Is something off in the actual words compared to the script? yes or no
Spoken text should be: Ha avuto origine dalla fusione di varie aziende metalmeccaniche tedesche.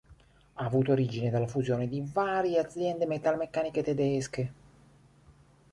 no